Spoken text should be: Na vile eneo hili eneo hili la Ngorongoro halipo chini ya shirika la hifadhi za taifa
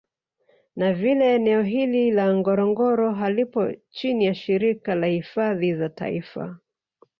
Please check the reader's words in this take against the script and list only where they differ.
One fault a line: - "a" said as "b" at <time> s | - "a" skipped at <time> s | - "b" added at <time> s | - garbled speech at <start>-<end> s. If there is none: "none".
- "eneo hili" skipped at 2.1 s